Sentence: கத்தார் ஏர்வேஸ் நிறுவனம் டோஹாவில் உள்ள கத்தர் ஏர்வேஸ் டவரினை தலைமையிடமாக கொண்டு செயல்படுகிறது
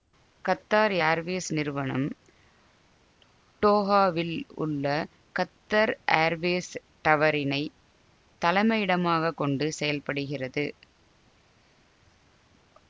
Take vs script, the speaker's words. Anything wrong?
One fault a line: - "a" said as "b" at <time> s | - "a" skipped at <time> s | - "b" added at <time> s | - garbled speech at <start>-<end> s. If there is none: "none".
none